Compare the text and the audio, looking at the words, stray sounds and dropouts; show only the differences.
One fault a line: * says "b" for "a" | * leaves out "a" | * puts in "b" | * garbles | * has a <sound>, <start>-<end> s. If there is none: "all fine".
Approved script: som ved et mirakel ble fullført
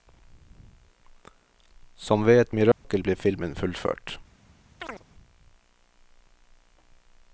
* has a dropout, 2.7-2.8 s
* puts in "filmen"
* has a chirp, 4.8-5.0 s